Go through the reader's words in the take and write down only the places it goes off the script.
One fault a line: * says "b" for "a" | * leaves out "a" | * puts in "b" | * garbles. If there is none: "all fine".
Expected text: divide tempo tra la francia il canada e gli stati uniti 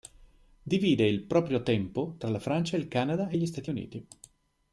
* puts in "il proprio"